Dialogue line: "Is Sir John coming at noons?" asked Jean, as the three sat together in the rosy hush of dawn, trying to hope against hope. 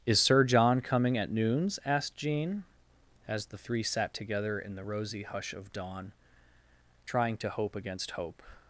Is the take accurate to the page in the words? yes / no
yes